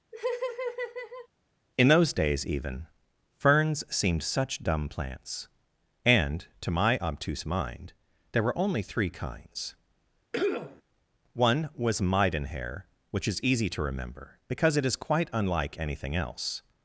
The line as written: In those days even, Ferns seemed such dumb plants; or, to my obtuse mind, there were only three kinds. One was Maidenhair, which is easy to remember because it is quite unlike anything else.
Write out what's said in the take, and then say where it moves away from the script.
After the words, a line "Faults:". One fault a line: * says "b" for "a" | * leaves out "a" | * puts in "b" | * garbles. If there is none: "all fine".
In those days even, Ferns seemed such dumb plants; and, to my obtuse mind, there were only three kinds. One was Maidenhair, which is easy to remember because it is quite unlike anything else.
Faults:
* says "and" for "or"